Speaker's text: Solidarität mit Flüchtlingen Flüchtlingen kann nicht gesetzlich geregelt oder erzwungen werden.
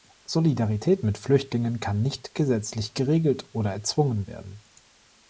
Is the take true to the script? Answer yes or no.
no